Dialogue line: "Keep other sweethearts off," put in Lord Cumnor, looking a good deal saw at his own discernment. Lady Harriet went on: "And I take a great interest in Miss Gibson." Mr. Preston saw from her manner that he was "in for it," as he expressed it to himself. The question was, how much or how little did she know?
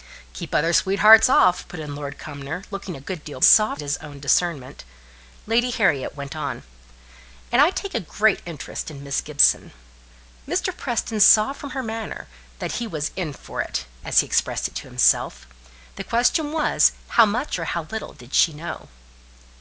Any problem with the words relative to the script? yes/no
no